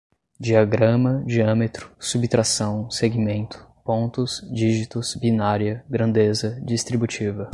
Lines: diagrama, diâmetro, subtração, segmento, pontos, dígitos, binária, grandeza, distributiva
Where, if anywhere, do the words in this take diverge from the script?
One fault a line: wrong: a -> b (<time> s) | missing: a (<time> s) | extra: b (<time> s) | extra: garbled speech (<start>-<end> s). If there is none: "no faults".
no faults